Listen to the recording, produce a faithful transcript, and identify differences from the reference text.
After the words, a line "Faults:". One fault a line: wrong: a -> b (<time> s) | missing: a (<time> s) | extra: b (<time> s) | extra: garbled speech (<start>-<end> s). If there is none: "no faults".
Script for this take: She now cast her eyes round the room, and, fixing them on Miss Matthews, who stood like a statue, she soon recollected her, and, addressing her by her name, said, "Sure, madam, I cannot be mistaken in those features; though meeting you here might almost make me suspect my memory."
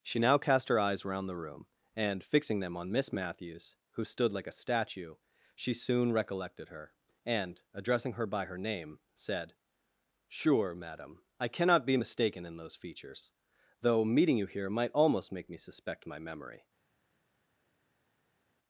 She now cast her eyes round the room, and, fixing them on Miss Matthews, who stood like a statue, she soon recollected her, and, addressing her by her name, said, "Sure, madam, I cannot be mistaken in those features; though meeting you here might almost make me suspect my memory."
Faults:
no faults